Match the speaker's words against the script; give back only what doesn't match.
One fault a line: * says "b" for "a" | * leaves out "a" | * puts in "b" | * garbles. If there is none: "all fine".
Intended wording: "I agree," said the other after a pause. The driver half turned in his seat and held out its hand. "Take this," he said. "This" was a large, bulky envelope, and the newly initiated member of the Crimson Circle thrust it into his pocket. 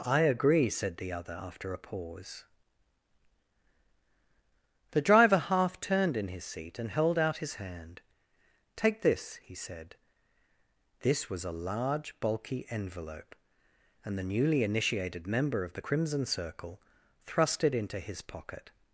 * says "his" for "its"